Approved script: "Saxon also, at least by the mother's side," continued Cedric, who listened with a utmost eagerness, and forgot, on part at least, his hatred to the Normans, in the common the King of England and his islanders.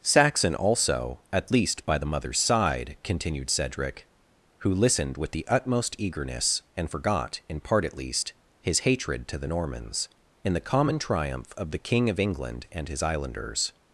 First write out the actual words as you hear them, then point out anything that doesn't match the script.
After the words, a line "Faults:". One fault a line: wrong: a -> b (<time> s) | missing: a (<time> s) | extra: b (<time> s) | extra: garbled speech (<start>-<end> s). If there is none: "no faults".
"Saxon also, at least by the mother's side," continued Cedric, who listened with the utmost eagerness, and forgot, in part at least, his hatred to the Normans, in the common triumph of the King of England and his islanders.
Faults:
wrong: a -> the (5.3 s)
wrong: on -> in (7.5 s)
extra: triumph of (11.0 s)